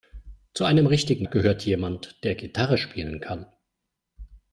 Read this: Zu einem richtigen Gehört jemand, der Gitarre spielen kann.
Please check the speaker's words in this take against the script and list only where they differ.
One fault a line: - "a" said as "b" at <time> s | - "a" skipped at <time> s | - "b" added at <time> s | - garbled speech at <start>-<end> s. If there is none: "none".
none